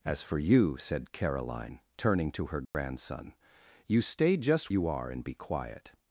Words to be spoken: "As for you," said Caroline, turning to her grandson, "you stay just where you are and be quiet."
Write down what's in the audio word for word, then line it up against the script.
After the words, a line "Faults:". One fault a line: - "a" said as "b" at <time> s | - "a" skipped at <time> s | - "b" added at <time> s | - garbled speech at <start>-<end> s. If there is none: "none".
"As for you," said Caroline, turning to her grandson, "you stay just you are and be quiet."
Faults:
- "where" skipped at 4.7 s